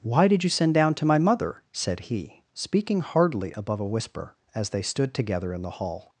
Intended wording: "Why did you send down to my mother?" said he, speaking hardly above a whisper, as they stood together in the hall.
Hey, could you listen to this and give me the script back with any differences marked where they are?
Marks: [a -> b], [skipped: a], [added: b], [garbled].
"Why did you send down to my mother?" said he, speaking hardly above a whisper, as they stood together in the hall.